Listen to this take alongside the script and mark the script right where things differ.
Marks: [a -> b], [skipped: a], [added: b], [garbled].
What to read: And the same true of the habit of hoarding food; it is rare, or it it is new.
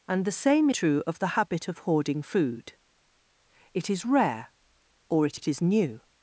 And the same true of the habit of hoarding food; it is rare, or it it is new.